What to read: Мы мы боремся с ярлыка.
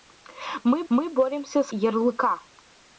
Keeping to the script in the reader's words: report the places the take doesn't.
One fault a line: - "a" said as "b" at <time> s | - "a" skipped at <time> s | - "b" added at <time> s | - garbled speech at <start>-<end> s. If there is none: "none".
none